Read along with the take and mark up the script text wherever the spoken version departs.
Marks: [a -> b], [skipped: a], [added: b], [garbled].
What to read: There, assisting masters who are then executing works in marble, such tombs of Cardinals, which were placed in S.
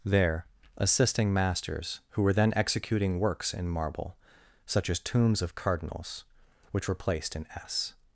There, assisting masters who [are -> were] then executing works in marble, such [added: as] tombs of Cardinals, which were placed in S.